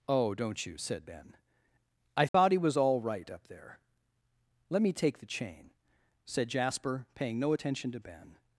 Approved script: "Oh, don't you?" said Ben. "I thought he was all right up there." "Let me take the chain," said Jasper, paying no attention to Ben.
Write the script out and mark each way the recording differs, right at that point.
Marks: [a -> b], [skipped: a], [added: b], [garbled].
"Oh, don't you?" said Ben. "I thought he was all right up there." "Let me take the chain," said Jasper, paying no attention to Ben.